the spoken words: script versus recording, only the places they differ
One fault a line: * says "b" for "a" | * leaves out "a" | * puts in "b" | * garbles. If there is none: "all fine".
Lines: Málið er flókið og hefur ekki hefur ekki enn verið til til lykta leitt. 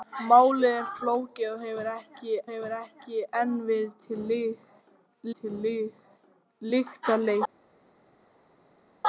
all fine